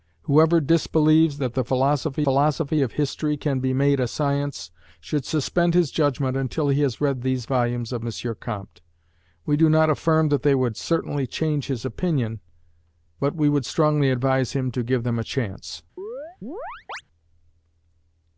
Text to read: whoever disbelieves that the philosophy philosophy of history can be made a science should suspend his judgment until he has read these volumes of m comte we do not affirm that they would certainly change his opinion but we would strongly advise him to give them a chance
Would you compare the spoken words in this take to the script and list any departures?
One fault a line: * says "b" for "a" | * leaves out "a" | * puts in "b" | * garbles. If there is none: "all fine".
all fine